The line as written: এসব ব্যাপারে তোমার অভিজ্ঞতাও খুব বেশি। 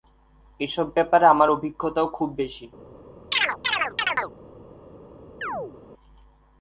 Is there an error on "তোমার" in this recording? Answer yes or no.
yes